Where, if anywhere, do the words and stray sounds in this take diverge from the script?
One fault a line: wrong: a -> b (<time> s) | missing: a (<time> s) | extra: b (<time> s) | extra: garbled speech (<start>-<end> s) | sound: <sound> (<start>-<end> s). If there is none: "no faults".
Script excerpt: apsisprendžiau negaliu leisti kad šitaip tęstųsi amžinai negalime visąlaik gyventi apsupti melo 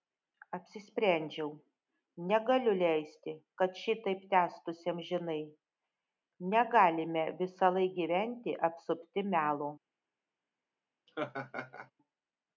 sound: laugh (11.1-11.9 s)